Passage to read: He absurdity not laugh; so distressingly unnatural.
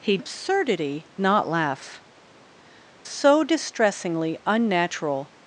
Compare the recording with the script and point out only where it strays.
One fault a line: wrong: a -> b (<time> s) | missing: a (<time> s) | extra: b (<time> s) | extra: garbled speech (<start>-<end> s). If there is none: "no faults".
no faults